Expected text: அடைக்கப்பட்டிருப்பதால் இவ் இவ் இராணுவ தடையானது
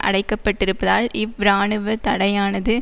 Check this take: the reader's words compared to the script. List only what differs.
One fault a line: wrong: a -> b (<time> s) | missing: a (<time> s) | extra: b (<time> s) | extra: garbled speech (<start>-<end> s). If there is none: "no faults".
missing: இவ் (1.4 s)